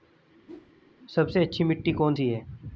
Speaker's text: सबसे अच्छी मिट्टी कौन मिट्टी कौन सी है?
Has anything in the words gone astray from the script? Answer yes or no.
yes